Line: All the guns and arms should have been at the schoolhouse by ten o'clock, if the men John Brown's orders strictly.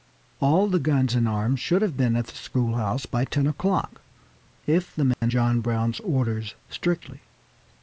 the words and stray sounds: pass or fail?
fail